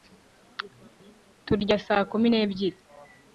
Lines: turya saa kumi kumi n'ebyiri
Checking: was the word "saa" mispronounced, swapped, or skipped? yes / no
no